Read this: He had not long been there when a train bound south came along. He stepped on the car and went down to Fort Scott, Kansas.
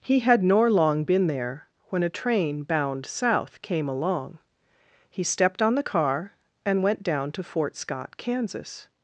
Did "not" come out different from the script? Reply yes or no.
yes